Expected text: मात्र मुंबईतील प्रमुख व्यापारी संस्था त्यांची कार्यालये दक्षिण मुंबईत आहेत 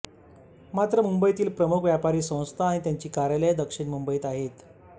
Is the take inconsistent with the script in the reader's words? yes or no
yes